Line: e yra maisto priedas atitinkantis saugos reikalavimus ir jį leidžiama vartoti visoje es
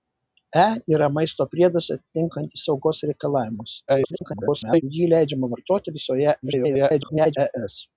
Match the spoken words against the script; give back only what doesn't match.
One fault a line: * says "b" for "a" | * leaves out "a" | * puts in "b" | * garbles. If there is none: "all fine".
* garbles
* garbles